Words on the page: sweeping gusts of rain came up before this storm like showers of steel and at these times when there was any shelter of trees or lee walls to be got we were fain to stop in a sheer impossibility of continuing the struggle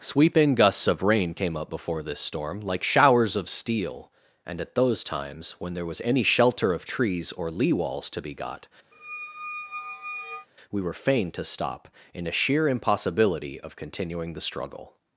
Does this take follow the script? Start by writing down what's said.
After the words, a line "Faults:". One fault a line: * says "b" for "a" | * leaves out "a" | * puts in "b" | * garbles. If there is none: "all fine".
sweeping gusts of rain came up before this storm like showers of steel and at those times when there was any shelter of trees or lee walls to be got we were fain to stop in a sheer impossibility of continuing the struggle
Faults:
* says "those" for "these"